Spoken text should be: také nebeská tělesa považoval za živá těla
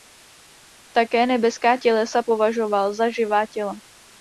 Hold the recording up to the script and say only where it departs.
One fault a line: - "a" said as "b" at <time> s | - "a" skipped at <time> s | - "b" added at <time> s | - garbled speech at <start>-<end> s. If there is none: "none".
none